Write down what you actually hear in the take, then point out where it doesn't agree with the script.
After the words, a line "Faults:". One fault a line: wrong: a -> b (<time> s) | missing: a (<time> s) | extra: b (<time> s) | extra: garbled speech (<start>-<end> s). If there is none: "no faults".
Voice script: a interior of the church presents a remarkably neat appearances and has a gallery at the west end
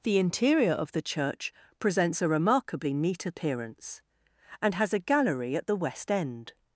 the interior of the church presents a remarkably neat appearance and has a gallery at the west end
Faults:
wrong: a -> the (0.0 s)
wrong: appearances -> appearance (3.3 s)